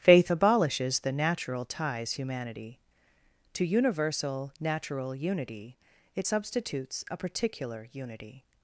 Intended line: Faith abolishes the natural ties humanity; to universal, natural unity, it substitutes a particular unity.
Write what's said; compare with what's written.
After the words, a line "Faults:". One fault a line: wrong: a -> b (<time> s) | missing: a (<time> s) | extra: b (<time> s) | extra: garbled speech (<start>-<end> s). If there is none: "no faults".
Faith abolishes the natural ties humanity; to universal, natural unity, it substitutes a particular unity.
Faults:
no faults